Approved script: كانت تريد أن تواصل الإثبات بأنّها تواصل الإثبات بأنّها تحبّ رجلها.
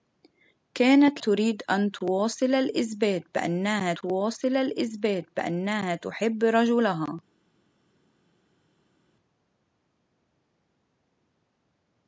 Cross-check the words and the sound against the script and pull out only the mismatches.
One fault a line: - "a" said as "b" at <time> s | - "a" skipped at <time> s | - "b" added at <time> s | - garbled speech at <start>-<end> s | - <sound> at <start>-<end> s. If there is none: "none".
none